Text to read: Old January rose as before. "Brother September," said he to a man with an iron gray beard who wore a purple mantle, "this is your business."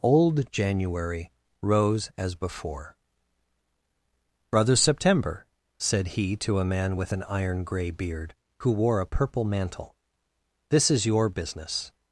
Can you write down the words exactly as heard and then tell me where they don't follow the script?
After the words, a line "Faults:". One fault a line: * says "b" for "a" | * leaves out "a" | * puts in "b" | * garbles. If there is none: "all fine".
Old January rose as before. "Brother September," said he to a man with an iron gray beard who wore a purple mantle, "this is your business."
Faults:
all fine